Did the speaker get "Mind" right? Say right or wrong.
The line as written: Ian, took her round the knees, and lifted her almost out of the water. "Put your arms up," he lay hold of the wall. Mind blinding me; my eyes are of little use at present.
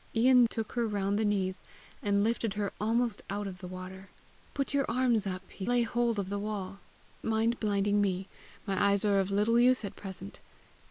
right